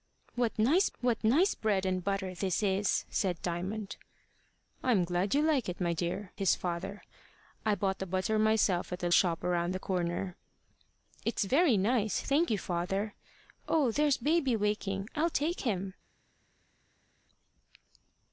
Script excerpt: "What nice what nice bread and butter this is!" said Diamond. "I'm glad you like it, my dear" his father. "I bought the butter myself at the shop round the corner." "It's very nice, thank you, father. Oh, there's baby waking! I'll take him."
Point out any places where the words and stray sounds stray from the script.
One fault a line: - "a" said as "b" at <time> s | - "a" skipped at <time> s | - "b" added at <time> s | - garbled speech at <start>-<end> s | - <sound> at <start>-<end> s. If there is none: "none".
none